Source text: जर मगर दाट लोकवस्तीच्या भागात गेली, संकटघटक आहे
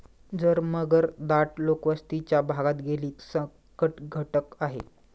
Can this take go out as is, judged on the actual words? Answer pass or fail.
pass